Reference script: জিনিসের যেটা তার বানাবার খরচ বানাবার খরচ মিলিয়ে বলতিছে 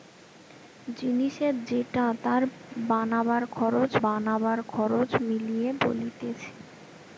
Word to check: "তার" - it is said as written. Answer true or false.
true